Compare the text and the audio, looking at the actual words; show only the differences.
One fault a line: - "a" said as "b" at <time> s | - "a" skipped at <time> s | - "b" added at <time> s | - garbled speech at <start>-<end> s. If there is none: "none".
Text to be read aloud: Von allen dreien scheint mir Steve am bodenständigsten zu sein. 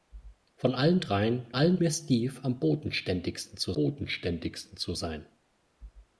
- "scheint" said as "allen" at 1.5 s
- "bodenständigsten zu" added at 3.7 s